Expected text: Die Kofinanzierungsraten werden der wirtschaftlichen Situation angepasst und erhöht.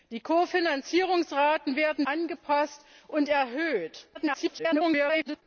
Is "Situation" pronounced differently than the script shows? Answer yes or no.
yes